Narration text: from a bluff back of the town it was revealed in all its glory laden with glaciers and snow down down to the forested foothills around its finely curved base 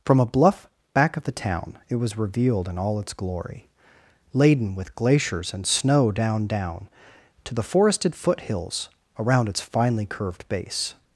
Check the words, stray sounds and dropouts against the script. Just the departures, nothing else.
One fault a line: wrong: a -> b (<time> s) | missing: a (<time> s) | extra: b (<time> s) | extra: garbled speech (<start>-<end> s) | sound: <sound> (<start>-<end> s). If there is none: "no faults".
no faults